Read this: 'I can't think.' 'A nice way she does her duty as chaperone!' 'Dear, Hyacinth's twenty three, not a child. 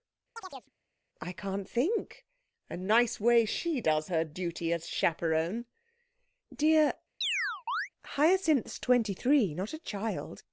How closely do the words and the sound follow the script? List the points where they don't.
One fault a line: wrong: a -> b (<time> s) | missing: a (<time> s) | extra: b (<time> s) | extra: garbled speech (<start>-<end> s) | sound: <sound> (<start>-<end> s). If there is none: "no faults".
sound: chirp (0.4-0.7 s)
sound: chirp (7.2-7.9 s)